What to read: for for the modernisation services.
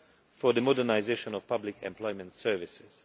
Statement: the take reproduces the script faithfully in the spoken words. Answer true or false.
false